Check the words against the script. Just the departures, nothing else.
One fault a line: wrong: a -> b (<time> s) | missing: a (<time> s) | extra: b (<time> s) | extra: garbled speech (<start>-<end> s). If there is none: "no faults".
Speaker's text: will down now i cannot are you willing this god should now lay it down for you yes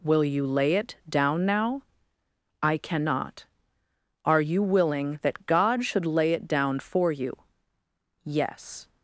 extra: you lay it (0.2 s)
wrong: this -> that (5.2 s)
missing: now (6.1 s)